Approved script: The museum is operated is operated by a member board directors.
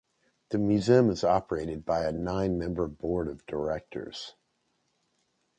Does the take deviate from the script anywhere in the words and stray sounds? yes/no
yes